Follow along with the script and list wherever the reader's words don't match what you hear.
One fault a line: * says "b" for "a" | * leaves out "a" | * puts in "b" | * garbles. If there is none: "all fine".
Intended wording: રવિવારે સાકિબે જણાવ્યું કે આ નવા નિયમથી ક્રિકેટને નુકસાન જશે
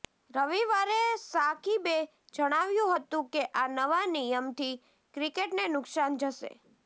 * puts in "હતું"